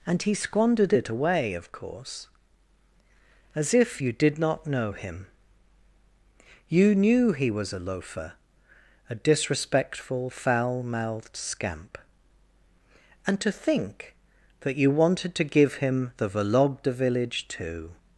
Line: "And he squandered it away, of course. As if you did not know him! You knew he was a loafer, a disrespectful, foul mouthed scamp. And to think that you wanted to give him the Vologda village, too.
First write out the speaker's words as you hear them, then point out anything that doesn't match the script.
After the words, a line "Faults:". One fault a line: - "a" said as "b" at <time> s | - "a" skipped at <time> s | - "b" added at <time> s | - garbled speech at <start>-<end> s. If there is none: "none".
"And he squandered it away, of course. As if you did not know him! You knew he was a loafer, a disrespectful, foul mouthed scamp. And to think that you wanted to give him the Vologda village, too.
Faults:
none